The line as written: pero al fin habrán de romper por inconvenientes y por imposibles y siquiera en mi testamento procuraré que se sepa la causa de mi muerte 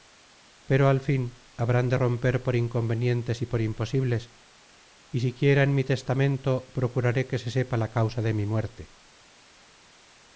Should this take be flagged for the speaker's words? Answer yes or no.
no